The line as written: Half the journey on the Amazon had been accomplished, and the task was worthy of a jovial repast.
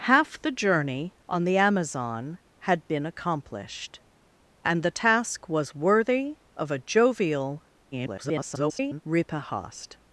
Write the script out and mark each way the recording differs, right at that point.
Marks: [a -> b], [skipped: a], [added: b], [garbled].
Half the journey on the Amazon had been accomplished, and the task was worthy of a jovial [garbled] repast.